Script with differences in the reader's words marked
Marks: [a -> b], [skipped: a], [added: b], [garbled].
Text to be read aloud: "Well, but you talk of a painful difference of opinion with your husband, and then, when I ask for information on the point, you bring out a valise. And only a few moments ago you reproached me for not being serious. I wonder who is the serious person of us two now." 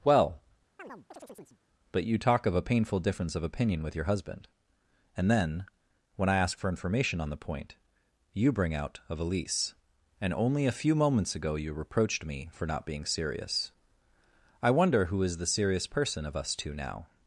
"Well, but you talk of a painful difference of opinion with your husband, and then, when I ask for information on the point, you bring out a valise. And only a few moments ago you reproached me for not being serious. I wonder who is the serious person of us two now."